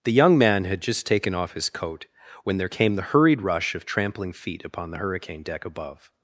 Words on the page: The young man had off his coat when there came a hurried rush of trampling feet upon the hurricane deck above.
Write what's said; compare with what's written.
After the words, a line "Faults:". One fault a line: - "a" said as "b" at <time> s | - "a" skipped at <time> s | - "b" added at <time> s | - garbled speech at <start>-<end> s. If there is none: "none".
The young man had just taken off his coat when there came the hurried rush of trampling feet upon the hurricane deck above.
Faults:
- "just taken" added at 0.8 s
- "a" said as "the" at 3.0 s